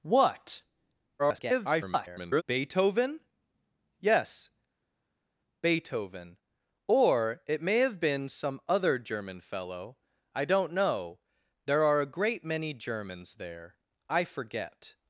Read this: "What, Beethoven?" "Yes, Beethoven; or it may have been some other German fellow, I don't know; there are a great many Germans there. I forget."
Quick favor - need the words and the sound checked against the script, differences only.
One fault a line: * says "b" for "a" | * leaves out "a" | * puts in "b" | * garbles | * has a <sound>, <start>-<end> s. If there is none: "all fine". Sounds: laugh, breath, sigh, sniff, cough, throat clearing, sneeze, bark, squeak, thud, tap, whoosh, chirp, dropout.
* garbles